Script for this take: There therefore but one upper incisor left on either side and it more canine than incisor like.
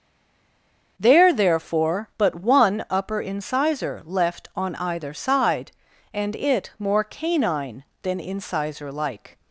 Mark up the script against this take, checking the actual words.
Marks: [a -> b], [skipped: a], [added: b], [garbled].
There therefore but one upper incisor left on either side and it more canine than incisor like.